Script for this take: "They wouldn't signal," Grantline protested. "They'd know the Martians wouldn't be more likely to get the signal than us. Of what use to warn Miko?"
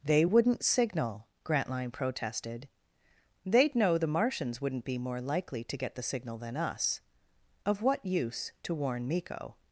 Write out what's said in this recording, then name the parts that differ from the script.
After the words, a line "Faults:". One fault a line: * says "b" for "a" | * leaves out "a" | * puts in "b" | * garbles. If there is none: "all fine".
"They wouldn't signal," Grantline protested. "They'd know the Martians wouldn't be more likely to get the signal than us. Of what use to warn Miko?"
Faults:
all fine